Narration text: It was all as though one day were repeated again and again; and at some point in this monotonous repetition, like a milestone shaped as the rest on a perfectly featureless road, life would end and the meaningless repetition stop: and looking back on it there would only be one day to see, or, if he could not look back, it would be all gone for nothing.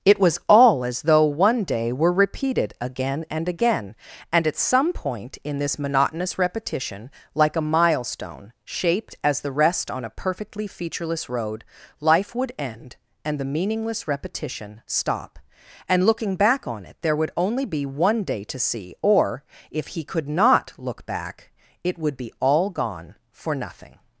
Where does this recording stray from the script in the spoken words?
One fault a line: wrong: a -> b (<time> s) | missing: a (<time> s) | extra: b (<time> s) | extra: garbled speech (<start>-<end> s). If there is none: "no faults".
no faults